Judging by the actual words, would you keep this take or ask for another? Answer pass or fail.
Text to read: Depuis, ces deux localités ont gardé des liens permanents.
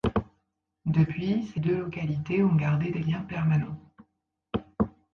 pass